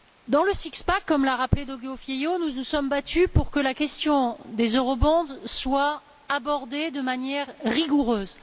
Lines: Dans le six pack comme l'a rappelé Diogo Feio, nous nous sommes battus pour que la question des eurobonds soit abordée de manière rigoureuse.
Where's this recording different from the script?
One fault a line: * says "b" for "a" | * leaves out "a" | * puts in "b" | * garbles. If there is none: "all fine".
all fine